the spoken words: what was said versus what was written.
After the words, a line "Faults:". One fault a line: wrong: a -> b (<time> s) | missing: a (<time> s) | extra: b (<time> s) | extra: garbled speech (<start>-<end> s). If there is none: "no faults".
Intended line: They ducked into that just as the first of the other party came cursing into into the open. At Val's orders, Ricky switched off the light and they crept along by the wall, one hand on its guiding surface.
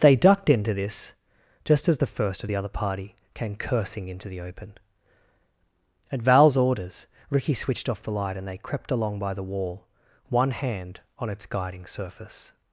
They ducked into this just as the first of the other party came cursing into the open. At Val's orders, Ricky switched off the light and they crept along by the wall, one hand on its guiding surface.
Faults:
wrong: that -> this (0.7 s)
missing: into (4.3 s)